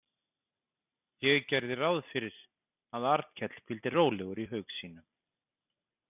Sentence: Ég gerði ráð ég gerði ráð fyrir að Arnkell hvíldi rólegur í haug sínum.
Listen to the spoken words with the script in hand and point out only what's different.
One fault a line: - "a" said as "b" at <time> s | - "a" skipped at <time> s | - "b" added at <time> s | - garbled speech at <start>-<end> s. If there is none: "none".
- "ég gerði ráð" skipped at 2.0 s